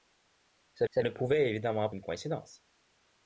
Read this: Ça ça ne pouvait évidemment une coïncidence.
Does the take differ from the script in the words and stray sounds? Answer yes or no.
no